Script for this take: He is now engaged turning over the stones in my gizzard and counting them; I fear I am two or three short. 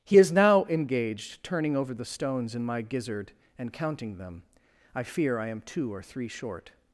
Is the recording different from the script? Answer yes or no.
no